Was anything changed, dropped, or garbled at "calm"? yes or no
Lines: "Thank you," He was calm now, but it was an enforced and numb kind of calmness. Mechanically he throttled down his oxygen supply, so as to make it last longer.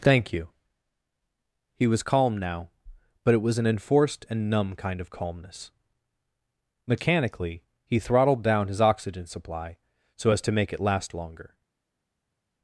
no